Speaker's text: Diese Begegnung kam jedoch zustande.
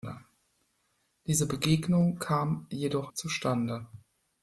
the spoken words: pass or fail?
pass